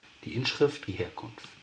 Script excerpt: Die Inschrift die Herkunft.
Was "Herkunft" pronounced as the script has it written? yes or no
yes